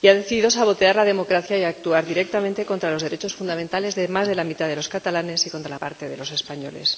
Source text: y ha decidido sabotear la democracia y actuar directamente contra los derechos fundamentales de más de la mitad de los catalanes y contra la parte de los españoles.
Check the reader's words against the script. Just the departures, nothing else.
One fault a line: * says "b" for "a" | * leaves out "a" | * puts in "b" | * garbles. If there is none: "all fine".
all fine